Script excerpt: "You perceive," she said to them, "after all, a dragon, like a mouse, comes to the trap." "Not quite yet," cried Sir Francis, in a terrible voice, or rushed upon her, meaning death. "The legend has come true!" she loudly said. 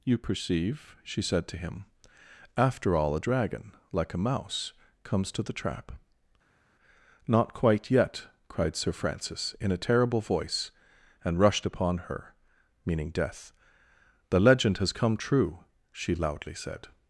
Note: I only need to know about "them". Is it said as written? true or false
false